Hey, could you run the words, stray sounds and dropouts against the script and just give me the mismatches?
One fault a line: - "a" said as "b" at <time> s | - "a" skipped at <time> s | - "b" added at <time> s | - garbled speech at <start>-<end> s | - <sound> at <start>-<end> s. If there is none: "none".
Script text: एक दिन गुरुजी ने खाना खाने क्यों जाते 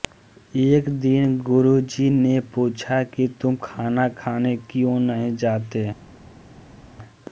- "पूछा कि तुम" added at 2.5 s
- "नहीं" added at 5.0 s